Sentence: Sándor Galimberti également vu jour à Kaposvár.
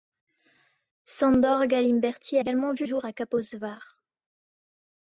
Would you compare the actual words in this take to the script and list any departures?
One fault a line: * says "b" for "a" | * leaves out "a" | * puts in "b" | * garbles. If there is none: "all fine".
all fine